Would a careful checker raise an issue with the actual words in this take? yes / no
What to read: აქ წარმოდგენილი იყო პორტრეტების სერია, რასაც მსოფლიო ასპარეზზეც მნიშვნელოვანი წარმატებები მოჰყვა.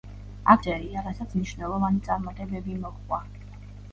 yes